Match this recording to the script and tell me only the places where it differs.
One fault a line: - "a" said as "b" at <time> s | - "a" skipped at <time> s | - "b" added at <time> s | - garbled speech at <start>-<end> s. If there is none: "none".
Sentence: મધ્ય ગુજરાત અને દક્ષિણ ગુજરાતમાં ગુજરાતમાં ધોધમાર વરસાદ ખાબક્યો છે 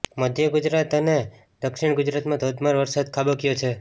- "ગુજરાતમાં" skipped at 2.4 s